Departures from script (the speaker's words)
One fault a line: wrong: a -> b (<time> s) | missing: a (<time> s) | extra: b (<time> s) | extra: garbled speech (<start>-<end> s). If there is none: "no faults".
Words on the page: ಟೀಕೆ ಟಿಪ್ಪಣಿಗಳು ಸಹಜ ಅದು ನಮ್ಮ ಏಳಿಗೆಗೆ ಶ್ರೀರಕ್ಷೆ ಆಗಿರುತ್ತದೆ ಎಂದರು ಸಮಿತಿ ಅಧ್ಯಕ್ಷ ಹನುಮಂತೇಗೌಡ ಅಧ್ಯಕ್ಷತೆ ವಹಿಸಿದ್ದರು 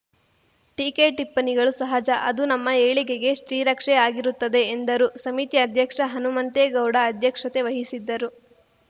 no faults